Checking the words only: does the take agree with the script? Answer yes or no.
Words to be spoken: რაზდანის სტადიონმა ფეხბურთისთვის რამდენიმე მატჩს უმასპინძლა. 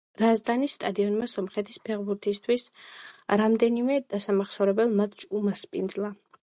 no